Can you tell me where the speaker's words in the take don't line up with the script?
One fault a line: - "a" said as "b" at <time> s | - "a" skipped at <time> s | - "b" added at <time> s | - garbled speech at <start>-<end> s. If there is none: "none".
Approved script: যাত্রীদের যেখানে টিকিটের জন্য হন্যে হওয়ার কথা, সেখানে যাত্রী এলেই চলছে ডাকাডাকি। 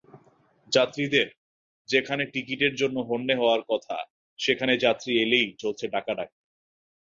none